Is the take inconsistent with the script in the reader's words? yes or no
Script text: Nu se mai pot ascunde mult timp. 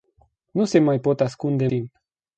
yes